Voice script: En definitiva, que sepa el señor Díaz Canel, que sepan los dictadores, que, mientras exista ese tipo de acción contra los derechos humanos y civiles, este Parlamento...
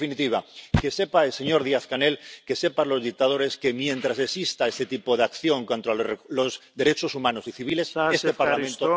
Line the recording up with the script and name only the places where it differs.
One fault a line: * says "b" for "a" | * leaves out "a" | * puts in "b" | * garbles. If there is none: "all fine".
all fine